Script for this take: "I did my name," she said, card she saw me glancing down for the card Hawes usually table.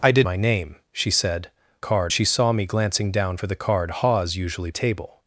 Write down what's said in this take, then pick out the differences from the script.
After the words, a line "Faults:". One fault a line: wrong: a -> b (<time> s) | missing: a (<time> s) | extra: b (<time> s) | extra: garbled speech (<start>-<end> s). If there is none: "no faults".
"I did my name," she said, card she saw me glancing down for the card Hawes usually table.
Faults:
no faults